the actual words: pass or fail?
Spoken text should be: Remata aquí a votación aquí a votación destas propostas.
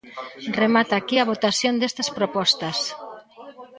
fail